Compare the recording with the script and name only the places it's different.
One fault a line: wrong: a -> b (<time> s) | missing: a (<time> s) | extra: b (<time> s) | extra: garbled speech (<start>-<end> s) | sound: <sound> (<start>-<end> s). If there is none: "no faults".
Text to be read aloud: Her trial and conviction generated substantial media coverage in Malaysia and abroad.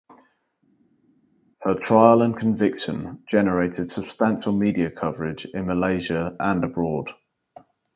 no faults